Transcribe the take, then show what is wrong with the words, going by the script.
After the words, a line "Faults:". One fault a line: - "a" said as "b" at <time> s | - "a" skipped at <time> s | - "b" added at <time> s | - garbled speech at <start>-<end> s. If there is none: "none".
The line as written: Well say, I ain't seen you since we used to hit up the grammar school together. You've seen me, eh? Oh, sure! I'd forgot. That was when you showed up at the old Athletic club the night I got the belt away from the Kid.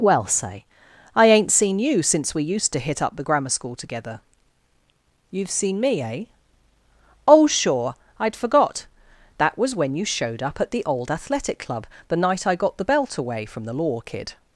Well say, I ain't seen you since we used to hit up the grammar school together. You've seen me, eh? Oh, sure! I'd forgot. That was when you showed up at the old Athletic club the night I got the belt away from the law Kid.
Faults:
- "law" added at 13.7 s